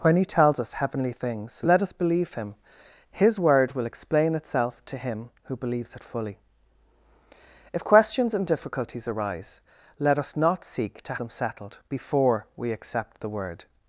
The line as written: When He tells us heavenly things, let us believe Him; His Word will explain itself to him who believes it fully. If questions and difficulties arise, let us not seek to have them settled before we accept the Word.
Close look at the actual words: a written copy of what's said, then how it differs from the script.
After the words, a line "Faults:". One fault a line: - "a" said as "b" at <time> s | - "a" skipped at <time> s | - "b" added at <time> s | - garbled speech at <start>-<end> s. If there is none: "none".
When He tells us heavenly things, let us believe Him; His Word will explain itself to him who believes it fully. If questions and difficulties arise, let us not seek to them settled before we accept the Word.
Faults:
- "have" skipped at 11.2 s